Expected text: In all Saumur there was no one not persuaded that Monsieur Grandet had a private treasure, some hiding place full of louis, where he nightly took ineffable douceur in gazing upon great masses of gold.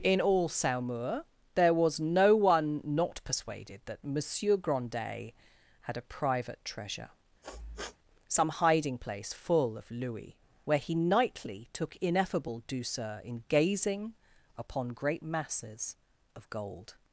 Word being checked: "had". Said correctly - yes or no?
yes